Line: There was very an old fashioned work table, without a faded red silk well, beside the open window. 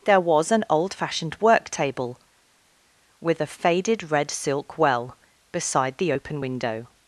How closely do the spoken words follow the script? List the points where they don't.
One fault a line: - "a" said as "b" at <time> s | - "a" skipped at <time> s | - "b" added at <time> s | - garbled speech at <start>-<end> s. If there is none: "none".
- "very" skipped at 0.5 s
- "without" said as "with" at 3.2 s